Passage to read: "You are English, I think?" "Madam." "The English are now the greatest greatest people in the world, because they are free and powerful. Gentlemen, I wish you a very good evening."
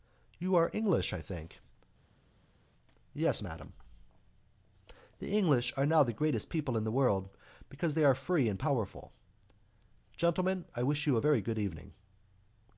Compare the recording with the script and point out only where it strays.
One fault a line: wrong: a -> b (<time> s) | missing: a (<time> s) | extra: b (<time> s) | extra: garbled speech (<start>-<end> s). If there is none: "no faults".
extra: Yes (3.1 s)
missing: greatest (6.5 s)